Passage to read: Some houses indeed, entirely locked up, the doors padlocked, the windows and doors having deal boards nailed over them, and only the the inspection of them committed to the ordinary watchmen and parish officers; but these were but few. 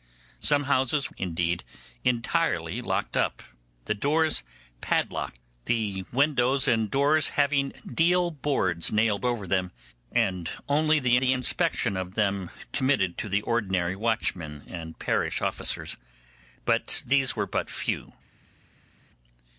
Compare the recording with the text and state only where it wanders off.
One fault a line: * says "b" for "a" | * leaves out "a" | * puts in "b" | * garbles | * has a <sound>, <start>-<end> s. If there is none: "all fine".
all fine